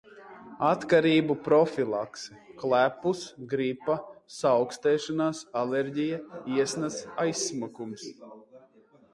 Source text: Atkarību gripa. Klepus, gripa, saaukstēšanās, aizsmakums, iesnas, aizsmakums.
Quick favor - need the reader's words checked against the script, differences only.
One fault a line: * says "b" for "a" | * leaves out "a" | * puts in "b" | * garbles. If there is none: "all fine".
* says "profilakse" for "gripa"
* says "alerģija" for "aizsmakums"